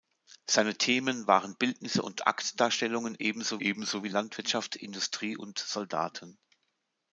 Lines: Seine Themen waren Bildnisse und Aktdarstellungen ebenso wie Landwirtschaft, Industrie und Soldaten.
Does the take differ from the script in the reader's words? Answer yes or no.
yes